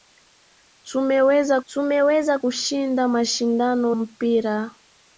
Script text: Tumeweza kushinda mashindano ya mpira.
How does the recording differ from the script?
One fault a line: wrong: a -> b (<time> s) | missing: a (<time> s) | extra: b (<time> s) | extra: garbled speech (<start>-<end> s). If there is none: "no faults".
extra: tumeweza (1.7 s)
missing: ya (4.0 s)